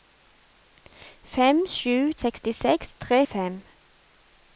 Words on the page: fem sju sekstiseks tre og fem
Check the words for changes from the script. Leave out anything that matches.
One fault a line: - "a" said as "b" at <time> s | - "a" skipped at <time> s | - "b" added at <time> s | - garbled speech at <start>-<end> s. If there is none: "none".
none